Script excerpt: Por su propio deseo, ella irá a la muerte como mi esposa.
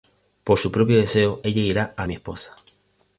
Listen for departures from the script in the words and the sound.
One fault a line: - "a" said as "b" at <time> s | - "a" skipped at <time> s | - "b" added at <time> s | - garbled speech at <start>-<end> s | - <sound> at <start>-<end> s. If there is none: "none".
- "la muerte como" skipped at 2.1 s